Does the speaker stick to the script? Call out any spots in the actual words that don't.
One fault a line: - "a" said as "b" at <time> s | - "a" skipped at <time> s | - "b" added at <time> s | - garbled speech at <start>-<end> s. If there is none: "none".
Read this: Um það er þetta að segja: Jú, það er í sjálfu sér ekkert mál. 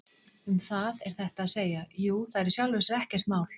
none